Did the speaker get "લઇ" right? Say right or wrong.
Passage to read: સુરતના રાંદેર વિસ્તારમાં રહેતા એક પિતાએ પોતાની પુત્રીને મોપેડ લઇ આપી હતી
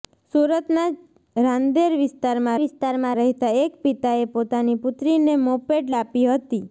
wrong